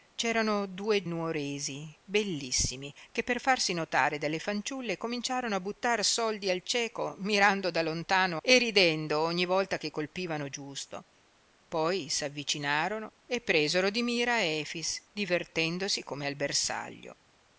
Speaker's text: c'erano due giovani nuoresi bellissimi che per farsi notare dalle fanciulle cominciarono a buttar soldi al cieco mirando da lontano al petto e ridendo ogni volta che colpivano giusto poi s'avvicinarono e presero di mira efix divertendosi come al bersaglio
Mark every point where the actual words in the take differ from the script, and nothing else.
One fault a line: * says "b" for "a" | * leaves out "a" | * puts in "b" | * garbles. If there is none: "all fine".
* leaves out "giovani"
* leaves out "al petto"